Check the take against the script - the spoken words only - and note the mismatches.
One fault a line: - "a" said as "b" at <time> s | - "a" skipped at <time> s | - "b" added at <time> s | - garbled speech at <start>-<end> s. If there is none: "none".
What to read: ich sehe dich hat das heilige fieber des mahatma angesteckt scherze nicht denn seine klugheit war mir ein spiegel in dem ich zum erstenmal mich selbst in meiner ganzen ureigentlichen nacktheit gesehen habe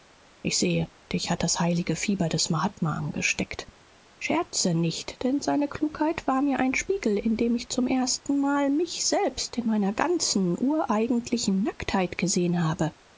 none